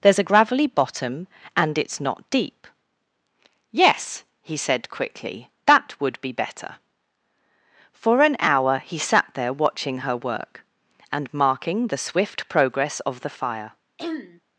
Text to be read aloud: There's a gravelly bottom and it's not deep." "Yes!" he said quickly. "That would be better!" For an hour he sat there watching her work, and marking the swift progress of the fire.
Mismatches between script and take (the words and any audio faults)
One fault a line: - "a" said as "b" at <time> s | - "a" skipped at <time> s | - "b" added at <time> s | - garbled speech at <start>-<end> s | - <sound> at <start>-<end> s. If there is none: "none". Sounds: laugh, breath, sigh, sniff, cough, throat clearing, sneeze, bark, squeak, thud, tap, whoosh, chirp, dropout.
- throat clearing at 14.0-14.4 s